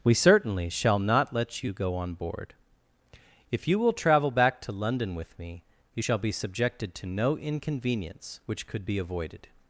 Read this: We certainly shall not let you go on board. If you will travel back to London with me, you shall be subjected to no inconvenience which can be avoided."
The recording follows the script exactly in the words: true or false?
false